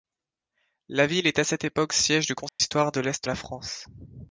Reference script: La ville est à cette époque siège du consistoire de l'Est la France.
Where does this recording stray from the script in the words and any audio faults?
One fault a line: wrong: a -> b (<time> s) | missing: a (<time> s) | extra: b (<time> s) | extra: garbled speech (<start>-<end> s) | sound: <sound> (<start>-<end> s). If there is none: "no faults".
sound: dropout (2.5-2.6 s)